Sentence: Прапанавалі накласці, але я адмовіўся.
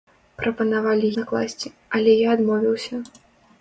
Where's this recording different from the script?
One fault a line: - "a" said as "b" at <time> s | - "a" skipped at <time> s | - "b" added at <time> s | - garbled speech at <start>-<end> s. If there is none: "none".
none